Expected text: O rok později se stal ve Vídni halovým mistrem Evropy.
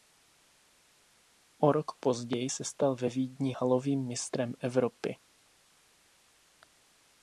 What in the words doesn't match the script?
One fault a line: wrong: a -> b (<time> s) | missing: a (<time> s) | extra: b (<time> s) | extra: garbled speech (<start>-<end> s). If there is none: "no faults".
no faults